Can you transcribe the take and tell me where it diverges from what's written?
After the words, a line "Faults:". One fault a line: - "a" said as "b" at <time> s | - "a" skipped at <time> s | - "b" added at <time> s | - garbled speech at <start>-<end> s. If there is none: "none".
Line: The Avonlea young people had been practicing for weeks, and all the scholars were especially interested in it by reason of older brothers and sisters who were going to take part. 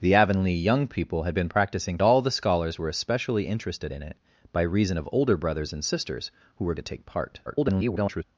The Avonlea young people had been practicing all the scholars were especially interested in it by reason of older brothers and sisters who were to take part. [garbled]
Faults:
- "for weeks and" skipped at 2.0 s
- "going" skipped at 6.7 s
- garbled speech at 7.5-8.2 s